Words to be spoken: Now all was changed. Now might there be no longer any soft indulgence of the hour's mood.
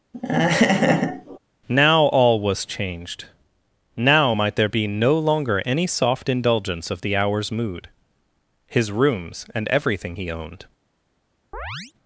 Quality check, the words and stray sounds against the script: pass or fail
fail